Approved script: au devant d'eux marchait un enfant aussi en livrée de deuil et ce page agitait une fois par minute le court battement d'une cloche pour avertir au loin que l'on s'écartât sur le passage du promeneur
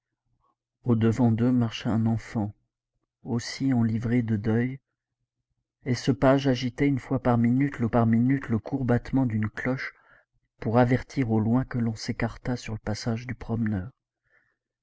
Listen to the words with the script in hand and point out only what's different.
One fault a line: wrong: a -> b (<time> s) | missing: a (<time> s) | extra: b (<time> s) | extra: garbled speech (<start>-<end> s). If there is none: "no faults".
extra: par minute le (7.9 s)